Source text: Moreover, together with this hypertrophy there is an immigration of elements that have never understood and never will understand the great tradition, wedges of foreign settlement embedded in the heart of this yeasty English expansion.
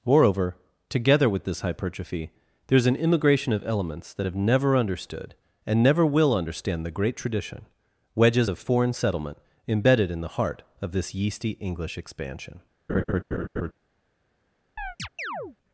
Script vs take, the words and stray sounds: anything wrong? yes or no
yes